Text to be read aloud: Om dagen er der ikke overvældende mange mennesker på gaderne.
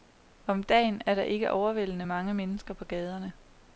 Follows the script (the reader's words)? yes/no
yes